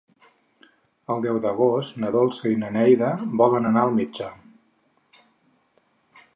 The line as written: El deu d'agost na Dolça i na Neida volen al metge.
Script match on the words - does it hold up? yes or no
no